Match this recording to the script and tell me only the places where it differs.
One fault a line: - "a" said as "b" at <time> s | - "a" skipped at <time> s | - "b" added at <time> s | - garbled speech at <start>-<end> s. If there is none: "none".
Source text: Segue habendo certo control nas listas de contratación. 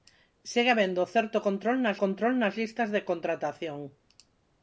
- "control nas" added at 2.0 s